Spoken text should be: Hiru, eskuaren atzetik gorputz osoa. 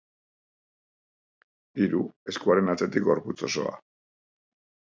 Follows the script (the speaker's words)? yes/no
yes